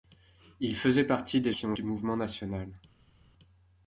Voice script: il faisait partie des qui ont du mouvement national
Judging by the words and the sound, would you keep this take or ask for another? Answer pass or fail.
pass